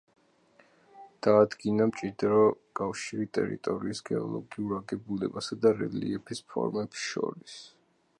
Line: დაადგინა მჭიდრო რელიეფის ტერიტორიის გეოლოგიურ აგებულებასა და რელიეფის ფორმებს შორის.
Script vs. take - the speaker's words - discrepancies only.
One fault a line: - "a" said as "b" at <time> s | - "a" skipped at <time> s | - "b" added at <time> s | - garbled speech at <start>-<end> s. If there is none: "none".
- "რელიეფის" said as "კავშირი" at 2.8 s